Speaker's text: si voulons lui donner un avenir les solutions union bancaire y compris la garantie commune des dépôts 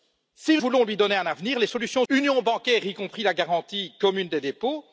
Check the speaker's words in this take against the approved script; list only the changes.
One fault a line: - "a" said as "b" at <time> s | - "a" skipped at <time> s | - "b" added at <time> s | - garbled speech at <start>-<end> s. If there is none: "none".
none